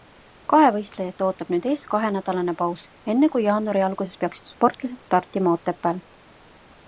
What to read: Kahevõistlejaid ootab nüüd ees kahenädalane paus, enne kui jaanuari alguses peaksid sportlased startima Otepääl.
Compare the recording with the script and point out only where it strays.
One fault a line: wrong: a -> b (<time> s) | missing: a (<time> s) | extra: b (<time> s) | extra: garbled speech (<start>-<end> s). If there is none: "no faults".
no faults